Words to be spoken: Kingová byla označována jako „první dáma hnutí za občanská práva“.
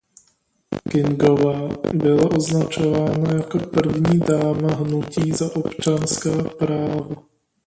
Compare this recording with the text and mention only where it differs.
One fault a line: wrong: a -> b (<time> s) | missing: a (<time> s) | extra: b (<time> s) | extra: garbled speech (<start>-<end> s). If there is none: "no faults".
no faults